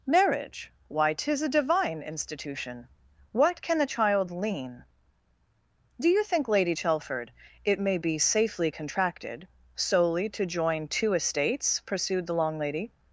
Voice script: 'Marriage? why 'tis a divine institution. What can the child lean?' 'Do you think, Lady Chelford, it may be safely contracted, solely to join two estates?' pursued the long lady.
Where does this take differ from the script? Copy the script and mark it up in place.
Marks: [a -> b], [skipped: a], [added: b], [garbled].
'Marriage? why 'tis a divine institution. What can the child lean?' 'Do you think, Lady Chelford, it may be safely contracted, solely to join two estates?' pursued the long lady.